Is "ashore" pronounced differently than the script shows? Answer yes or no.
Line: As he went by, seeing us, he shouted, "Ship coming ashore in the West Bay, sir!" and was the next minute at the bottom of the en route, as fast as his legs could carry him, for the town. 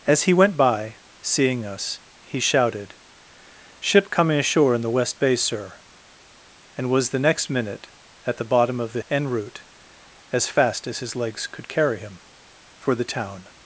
no